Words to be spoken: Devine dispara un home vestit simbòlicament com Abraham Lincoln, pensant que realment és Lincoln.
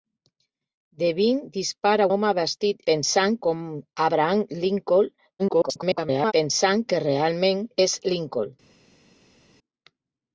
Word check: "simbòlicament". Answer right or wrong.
wrong